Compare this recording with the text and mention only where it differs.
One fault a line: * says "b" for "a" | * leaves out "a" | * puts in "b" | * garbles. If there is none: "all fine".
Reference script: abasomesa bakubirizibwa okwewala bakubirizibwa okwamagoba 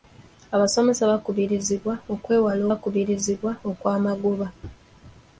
all fine